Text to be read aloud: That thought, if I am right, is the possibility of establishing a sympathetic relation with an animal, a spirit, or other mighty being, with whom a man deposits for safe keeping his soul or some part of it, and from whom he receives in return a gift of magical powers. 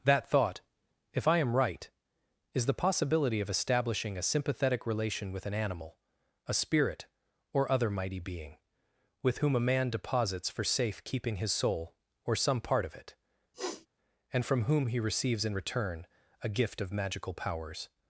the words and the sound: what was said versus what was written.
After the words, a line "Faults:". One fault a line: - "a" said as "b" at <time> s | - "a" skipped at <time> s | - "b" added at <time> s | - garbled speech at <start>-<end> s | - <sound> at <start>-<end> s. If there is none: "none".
That thought, if I am right, is the possibility of establishing a sympathetic relation with an animal, a spirit, or other mighty being, with whom a man deposits for safe keeping his soul or some part of it, and from whom he receives in return a gift of magical powers.
Faults:
- sniff at 13.5-13.9 s